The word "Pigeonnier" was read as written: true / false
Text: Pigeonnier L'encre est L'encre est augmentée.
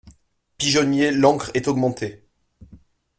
true